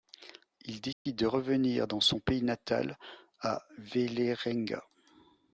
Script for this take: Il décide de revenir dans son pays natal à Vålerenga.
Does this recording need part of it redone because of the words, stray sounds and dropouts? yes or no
yes